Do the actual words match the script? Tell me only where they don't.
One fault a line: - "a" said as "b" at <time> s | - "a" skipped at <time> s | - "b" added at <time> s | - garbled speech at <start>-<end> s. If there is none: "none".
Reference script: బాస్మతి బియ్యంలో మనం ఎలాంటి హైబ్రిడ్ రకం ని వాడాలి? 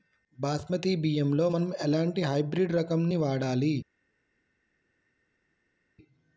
none